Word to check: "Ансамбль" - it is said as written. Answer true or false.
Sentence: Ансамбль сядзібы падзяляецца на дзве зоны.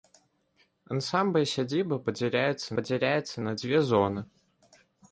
true